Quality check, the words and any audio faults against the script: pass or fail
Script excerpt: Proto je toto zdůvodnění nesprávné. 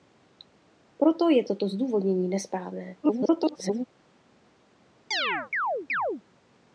fail